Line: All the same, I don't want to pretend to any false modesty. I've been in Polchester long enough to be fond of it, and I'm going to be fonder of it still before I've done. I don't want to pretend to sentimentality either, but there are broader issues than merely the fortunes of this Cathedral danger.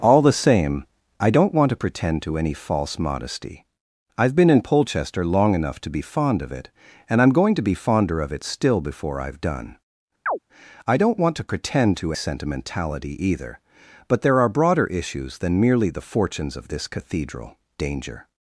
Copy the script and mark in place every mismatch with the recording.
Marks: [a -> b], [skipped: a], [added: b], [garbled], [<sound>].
All the same, I don't want to pretend to any false modesty. I've been in Polchester long enough to be fond of it, and I'm going to be fonder of it still before I've done. [chirp] I don't want to pretend to sentimentality either, but there are broader issues than merely the fortunes of this Cathedral danger.